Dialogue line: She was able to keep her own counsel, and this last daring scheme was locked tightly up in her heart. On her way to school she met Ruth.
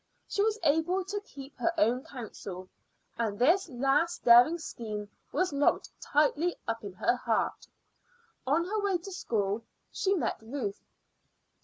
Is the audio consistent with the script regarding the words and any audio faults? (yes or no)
yes